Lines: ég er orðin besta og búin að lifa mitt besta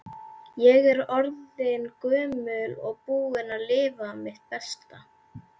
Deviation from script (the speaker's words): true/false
true